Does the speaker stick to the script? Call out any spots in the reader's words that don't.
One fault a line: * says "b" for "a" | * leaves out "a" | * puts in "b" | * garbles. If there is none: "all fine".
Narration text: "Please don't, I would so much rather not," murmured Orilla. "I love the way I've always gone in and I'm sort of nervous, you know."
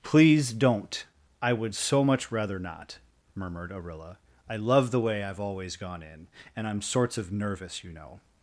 * says "sorts" for "sort"